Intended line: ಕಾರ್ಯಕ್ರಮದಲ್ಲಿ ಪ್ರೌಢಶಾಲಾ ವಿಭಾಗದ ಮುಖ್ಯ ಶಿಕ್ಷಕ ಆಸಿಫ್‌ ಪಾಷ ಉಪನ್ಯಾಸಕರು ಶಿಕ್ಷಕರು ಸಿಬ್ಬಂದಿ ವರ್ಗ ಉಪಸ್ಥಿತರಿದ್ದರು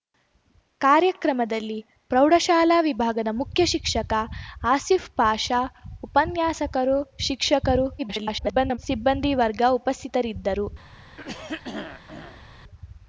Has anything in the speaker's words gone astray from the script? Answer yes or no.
yes